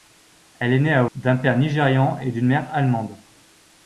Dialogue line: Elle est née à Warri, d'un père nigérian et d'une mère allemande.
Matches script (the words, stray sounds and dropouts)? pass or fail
fail